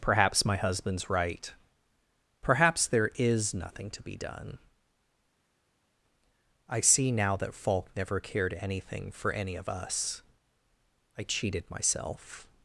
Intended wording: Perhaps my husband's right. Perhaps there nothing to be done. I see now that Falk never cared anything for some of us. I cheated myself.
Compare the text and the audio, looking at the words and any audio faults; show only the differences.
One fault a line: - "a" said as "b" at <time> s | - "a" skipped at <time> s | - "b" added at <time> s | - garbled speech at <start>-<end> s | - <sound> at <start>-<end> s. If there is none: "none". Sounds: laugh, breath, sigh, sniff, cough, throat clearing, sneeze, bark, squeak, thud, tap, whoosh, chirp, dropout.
- "is" added at 3.2 s
- "some" said as "any" at 9.3 s